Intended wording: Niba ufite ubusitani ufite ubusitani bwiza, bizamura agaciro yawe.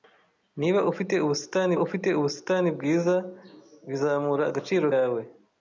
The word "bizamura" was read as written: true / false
true